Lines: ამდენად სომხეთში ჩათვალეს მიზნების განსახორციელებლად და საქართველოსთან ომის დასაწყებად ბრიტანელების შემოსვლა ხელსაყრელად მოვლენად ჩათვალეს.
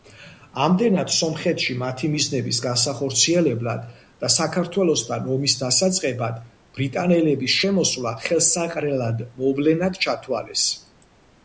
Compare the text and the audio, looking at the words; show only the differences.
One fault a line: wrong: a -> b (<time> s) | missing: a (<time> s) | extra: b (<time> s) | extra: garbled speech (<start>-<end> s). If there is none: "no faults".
wrong: ჩათვალეს -> მათი (1.8 s)